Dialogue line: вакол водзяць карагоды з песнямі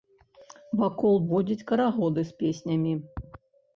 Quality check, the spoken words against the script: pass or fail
pass